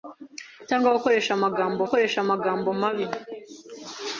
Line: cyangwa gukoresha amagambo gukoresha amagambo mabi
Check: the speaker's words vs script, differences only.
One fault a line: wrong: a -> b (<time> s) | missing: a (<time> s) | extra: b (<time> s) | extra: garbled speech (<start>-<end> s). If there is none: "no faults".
no faults